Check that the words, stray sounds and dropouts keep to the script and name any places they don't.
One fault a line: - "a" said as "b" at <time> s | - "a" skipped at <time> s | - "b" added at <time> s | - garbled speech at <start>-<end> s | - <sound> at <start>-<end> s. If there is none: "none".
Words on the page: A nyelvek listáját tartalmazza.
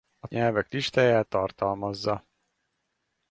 none